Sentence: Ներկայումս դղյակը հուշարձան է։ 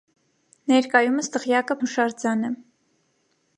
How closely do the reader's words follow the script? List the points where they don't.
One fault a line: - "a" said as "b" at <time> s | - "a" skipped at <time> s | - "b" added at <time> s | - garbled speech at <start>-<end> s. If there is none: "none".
none